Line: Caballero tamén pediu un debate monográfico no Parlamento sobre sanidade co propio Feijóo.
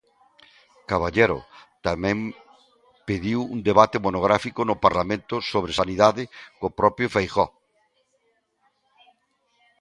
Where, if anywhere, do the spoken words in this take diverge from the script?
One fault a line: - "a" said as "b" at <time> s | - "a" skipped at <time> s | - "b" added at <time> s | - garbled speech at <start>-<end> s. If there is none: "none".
none